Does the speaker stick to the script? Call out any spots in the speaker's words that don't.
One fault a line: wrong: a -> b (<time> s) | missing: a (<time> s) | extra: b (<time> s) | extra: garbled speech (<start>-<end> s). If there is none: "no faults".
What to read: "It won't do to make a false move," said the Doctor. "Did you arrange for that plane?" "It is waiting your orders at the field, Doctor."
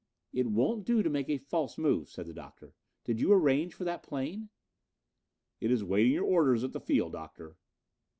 no faults